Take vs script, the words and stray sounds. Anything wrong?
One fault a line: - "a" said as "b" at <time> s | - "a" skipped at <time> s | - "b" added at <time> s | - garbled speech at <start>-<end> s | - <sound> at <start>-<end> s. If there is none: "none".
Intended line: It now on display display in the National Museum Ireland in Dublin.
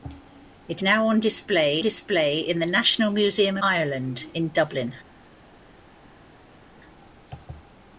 none